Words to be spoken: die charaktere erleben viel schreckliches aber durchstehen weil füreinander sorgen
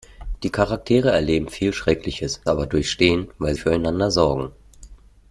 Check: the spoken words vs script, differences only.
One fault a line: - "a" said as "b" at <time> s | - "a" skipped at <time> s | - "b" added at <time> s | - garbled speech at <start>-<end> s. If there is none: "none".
none